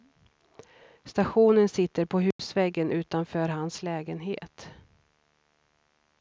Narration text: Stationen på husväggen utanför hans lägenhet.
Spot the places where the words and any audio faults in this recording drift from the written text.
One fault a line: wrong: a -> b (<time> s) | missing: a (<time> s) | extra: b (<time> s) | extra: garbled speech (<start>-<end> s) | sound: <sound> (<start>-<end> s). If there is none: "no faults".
extra: sitter (1.7 s)
sound: dropout (2.3-2.4 s)